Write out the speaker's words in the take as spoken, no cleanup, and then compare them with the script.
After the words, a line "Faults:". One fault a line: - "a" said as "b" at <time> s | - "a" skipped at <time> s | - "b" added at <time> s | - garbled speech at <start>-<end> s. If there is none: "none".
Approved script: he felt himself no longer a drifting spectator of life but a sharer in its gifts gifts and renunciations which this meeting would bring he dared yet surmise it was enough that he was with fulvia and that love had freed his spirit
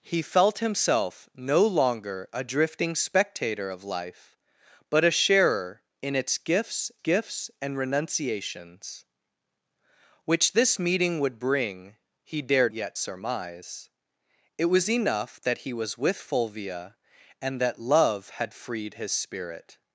he felt himself no longer a drifting spectator of life but a sharer in its gifts gifts and renunciations which this meeting would bring he dared yet surmise it was enough that he was with fulvia and that love had freed his spirit
Faults:
none